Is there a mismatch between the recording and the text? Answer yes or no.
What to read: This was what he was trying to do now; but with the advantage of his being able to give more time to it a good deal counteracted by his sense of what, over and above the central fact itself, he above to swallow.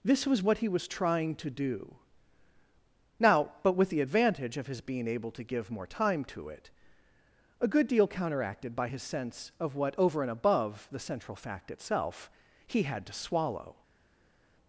yes